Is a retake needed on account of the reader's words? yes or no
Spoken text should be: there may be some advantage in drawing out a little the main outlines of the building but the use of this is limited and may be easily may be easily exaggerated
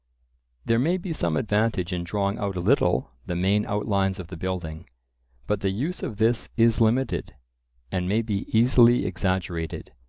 yes